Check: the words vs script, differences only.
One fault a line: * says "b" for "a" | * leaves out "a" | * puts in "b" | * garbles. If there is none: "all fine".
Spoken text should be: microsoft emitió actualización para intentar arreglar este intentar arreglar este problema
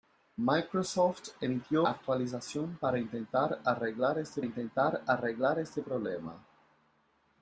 all fine